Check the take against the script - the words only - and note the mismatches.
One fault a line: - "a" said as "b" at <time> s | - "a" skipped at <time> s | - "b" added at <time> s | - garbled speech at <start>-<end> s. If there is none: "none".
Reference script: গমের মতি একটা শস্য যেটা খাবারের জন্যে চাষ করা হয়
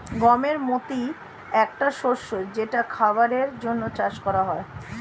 none